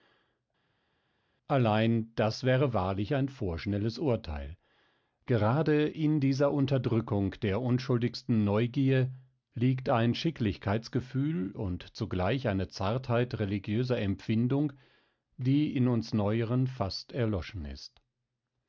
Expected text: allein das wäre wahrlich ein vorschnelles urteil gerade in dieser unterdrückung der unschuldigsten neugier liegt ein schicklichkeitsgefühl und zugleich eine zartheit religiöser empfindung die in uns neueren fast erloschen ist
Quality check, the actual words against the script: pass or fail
pass